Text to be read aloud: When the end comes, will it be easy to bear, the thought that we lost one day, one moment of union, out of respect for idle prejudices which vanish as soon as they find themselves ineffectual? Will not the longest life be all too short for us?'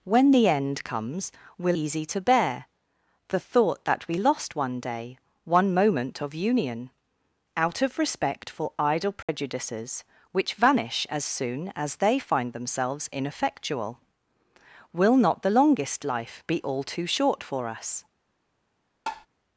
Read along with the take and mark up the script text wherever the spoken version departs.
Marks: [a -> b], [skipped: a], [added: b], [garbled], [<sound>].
When the end comes, will [skipped: it be] easy to bear, the thought that we lost one day, one moment of union, out of respect for idle prejudices [dropout] which vanish as soon as they find themselves ineffectual? Will not the longest life be all too short for us?' [tap]